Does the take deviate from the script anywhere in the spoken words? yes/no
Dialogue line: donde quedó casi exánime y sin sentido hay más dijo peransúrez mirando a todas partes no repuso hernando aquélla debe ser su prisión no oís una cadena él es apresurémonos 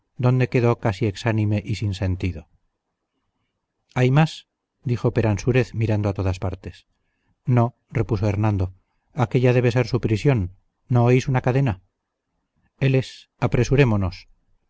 no